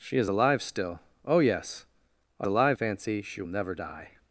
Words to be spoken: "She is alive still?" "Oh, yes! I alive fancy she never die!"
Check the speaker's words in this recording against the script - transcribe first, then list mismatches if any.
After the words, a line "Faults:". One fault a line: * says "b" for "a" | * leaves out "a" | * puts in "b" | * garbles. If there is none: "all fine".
"She is alive still?" "Oh, yes! I alive fancy she never die!"
Faults:
all fine